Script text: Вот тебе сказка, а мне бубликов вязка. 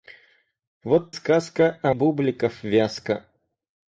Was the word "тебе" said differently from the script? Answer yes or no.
yes